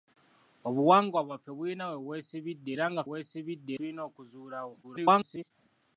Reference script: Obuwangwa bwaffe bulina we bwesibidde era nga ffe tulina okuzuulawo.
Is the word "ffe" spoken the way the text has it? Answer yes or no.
no